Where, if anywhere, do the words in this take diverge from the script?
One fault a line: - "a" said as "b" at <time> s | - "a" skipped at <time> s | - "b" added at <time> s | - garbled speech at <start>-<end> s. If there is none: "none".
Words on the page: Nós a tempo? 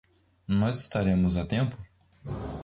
- "estaremos" added at 0.8 s